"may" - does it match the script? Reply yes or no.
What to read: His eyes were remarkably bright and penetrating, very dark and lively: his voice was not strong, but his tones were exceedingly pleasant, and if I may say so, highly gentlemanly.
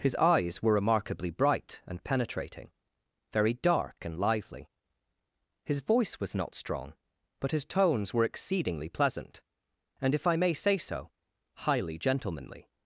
yes